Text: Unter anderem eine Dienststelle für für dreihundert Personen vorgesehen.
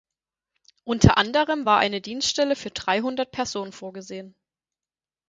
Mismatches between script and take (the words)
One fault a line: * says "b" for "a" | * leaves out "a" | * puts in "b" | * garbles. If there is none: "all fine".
* puts in "war"
* leaves out "für"